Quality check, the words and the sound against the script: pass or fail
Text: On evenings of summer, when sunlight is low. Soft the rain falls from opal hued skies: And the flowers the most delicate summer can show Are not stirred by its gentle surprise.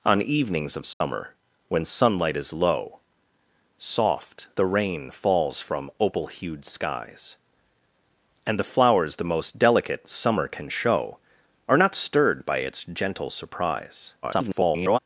fail